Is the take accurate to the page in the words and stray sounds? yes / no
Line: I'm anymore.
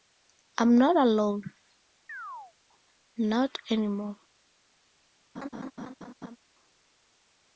no